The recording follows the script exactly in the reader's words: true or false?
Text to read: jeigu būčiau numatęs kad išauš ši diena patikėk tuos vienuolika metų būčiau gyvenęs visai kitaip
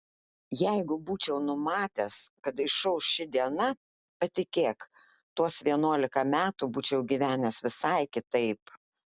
true